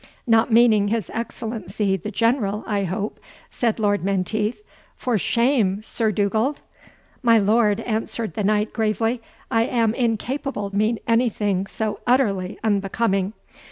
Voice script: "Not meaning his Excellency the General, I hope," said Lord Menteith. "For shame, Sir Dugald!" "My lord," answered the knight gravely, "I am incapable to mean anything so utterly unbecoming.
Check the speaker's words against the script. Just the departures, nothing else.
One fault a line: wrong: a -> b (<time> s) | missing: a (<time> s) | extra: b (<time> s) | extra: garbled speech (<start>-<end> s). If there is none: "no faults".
missing: to (10.7 s)